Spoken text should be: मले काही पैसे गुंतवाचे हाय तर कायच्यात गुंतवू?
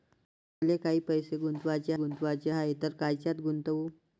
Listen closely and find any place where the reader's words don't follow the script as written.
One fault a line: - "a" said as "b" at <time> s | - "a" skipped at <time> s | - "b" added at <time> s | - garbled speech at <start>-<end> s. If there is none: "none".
- "गुंतवाचे" added at 1.9 s